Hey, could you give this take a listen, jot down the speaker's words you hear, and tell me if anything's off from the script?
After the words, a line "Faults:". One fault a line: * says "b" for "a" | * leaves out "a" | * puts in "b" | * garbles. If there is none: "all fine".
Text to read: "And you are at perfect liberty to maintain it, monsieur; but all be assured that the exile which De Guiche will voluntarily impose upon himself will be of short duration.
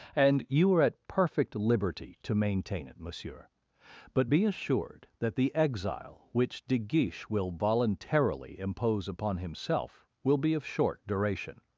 "And you are at perfect liberty to maintain it, monsieur; but be assured that the exile which De Guiche will voluntarily impose upon himself will be of short duration.
Faults:
* leaves out "all"